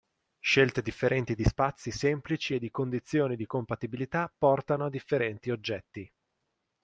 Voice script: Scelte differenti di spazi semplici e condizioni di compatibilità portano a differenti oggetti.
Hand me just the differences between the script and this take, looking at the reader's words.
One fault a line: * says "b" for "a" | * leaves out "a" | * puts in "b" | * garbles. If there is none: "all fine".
* puts in "di"